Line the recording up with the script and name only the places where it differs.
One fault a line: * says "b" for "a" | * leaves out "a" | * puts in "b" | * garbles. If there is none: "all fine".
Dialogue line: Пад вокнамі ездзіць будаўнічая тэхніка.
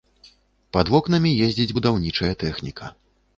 all fine